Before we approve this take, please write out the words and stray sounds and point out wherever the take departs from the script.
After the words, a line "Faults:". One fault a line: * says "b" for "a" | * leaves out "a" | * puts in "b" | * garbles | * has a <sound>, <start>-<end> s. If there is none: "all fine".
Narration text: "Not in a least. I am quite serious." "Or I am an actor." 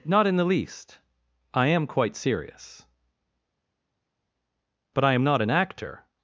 "Not in the least. I am quite serious." "But I am not an actor."
Faults:
* says "the" for "a"
* says "But" for "Or"
* puts in "not"